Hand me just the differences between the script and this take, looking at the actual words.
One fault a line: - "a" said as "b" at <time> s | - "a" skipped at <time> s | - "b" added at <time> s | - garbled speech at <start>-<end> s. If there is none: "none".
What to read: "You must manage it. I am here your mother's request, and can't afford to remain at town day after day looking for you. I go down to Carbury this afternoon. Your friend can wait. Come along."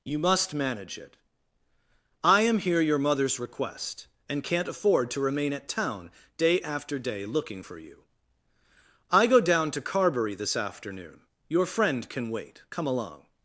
none